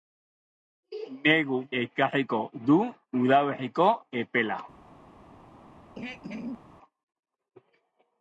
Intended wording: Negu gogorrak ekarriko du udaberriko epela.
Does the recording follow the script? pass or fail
fail